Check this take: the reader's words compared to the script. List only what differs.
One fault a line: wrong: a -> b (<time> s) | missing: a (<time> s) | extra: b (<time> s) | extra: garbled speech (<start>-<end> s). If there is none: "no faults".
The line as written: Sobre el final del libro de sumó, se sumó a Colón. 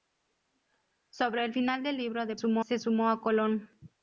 no faults